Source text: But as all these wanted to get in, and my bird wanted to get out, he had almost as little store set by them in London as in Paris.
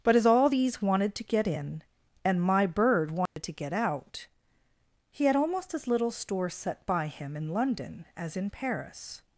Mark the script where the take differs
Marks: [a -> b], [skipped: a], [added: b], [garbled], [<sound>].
But as all these wanted to get in, and my bird wanted [dropout] to get out, he had almost as little store set by [them -> him] in London as in Paris.